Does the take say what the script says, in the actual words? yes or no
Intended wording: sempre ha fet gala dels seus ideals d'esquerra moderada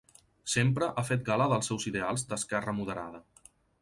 yes